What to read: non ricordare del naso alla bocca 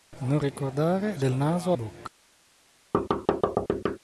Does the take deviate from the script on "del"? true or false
false